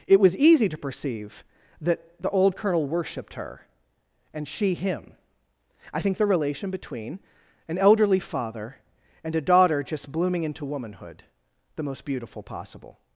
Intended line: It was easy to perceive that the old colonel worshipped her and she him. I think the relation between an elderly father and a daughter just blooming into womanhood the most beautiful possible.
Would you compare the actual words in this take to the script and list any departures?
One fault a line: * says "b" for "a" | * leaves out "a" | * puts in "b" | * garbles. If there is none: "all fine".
all fine